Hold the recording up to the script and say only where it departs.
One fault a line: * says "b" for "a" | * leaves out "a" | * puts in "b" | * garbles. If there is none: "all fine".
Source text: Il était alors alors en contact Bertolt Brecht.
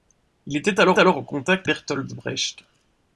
all fine